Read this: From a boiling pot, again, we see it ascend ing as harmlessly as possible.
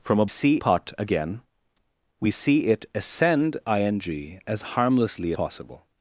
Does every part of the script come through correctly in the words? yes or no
no